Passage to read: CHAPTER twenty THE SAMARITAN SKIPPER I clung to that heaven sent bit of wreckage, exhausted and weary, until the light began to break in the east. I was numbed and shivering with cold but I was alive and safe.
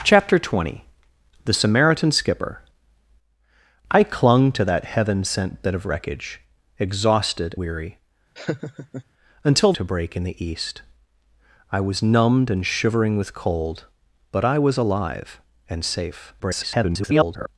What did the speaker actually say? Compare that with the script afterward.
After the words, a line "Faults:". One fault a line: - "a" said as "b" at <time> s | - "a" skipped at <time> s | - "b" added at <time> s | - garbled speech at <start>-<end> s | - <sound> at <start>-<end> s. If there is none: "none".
CHAPTER twenty THE SAMARITAN SKIPPER I clung to that heaven sent bit of wreckage, exhausted weary, until to break in the east. I was numbed and shivering with cold but I was alive and safe. [garbled]
Faults:
- "and" skipped at 7.5 s
- laugh at 8.4-9.0 s
- "the light began" skipped at 9.7 s
- garbled speech at 16.4-17.5 s